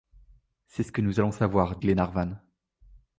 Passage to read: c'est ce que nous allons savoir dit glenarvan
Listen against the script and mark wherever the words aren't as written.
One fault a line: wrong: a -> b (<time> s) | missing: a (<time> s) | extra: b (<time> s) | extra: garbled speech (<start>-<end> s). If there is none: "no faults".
missing: dit (1.8 s)